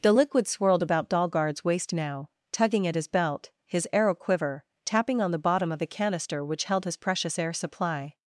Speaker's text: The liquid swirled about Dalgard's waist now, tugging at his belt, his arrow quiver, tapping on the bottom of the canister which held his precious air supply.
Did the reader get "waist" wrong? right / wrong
right